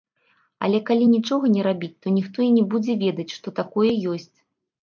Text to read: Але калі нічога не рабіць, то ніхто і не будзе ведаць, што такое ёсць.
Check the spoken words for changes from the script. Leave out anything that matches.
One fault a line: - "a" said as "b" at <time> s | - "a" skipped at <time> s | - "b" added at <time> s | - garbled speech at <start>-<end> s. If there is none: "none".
none